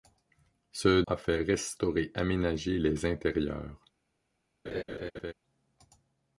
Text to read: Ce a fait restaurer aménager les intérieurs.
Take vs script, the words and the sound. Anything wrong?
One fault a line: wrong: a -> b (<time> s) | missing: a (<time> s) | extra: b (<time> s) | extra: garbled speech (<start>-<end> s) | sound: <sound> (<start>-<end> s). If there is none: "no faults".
sound: laugh (4.7-5.3 s)